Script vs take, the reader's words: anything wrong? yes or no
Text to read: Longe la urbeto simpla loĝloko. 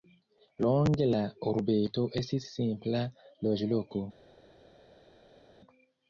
yes